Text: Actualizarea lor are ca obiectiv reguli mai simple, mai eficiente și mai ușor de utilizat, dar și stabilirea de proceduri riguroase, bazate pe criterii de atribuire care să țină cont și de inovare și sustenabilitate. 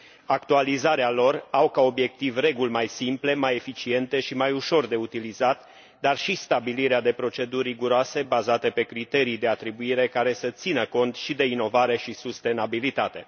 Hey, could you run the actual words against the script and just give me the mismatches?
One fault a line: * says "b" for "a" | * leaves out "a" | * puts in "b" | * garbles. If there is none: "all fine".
all fine